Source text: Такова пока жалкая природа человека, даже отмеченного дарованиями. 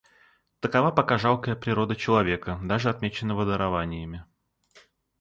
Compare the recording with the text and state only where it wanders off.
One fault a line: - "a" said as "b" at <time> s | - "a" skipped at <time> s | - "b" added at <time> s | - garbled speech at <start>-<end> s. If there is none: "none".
none